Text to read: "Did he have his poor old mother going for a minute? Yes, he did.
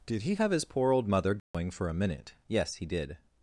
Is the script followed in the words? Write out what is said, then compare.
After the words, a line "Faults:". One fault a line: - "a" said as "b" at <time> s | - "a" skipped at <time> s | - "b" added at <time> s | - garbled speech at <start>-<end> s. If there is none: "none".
"Did he have his poor old mother going for a minute? Yes, he did.
Faults:
none